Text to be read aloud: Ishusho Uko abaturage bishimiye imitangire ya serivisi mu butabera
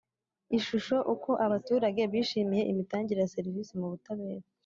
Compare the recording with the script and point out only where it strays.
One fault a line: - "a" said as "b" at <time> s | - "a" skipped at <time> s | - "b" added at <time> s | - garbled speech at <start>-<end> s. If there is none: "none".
none